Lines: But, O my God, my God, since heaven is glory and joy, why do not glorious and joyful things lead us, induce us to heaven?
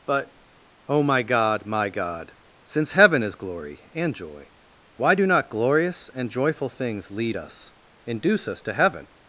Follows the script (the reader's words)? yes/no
yes